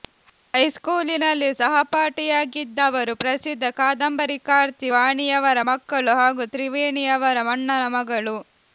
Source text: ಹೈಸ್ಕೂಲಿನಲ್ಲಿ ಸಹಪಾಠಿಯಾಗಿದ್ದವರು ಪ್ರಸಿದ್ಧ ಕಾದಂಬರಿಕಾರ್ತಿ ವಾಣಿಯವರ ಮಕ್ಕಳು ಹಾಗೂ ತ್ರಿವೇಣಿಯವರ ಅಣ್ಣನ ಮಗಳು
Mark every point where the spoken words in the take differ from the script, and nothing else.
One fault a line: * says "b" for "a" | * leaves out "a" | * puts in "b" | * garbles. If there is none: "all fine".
all fine